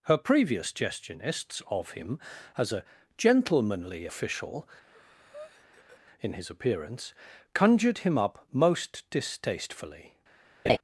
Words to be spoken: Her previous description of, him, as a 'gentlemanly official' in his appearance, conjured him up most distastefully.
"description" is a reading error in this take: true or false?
true